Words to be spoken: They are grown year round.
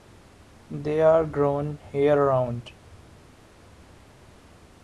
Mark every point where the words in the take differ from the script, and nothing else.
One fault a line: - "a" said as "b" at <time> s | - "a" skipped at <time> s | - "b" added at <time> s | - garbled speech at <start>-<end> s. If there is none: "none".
none